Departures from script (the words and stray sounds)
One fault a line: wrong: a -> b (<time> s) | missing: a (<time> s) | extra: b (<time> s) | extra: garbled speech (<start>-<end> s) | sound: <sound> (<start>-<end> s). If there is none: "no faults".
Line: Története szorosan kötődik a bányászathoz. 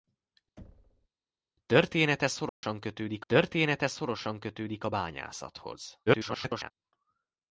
sound: thud (0.6-1.1 s)
sound: dropout (2.5-2.6 s)
extra: története szorosan kötődik (3.3 s)
extra: garbled speech (6.1-6.7 s)